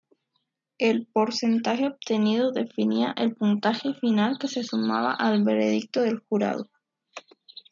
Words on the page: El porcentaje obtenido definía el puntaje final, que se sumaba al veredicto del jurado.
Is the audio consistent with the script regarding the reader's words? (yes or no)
yes